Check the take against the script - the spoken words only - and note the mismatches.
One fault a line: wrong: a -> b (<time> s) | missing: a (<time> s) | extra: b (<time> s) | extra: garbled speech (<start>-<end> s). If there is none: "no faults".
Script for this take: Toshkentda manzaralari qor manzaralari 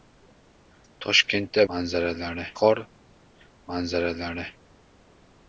no faults